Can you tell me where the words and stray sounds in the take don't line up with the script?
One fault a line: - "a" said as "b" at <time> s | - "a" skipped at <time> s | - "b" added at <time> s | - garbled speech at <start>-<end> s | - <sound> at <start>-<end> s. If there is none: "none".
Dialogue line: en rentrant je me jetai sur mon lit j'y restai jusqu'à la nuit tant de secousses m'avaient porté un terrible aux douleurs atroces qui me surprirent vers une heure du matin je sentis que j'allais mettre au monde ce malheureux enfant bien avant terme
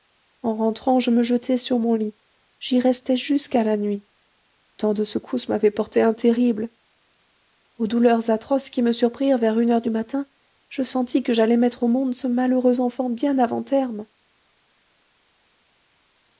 none